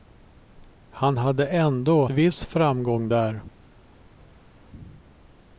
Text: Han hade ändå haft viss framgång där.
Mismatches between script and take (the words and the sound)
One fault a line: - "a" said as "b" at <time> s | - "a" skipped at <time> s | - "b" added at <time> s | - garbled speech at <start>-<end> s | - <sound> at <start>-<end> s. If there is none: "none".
- "haft" skipped at 2.0 s